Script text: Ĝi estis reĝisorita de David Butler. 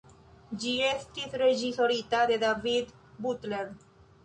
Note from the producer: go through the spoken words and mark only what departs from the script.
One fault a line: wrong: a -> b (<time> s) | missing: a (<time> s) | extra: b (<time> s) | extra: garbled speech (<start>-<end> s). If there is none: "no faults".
no faults